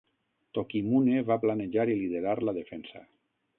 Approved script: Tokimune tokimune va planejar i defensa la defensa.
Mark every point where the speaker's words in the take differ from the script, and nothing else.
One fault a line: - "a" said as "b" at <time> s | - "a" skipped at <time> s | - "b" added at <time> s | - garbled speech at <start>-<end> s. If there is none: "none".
- "tokimune" skipped at 1.2 s
- "defensa" said as "liderar" at 2.0 s